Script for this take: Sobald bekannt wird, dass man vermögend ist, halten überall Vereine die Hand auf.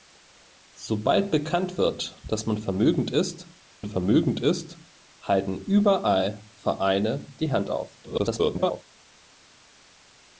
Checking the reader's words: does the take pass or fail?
fail